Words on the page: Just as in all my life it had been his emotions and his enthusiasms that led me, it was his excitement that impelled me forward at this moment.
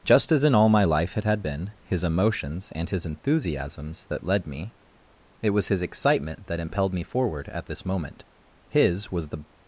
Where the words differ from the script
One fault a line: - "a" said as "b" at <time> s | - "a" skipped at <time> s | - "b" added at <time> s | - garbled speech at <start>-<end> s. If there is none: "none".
- "His was the" added at 8.7 s